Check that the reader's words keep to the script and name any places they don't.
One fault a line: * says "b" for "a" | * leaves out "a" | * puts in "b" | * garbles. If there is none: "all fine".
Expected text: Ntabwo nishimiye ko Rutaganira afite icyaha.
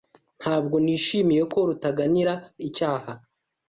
* leaves out "afite"